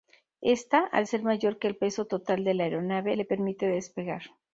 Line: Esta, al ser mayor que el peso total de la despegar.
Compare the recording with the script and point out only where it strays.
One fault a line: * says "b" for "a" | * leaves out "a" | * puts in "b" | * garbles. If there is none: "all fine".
* puts in "aeronave le permite"